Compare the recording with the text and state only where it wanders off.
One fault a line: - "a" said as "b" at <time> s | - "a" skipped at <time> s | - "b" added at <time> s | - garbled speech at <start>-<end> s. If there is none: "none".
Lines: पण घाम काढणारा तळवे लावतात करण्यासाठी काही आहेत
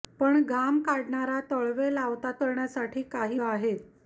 none